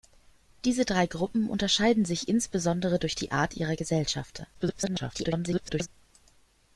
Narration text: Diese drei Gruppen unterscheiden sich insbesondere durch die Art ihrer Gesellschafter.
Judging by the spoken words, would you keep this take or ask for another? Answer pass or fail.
fail